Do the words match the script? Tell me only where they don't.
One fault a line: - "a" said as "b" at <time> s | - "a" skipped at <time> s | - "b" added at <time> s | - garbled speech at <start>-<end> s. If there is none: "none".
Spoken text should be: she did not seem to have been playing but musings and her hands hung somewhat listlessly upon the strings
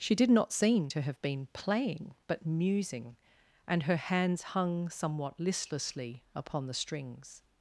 - "musings" said as "musing" at 2.5 s